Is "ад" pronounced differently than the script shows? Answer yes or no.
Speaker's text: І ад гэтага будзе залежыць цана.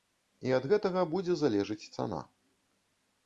no